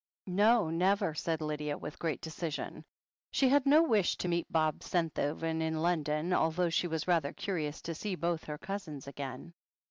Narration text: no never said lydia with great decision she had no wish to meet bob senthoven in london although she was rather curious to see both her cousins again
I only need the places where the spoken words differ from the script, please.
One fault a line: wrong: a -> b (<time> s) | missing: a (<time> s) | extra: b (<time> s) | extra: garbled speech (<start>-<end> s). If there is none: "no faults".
no faults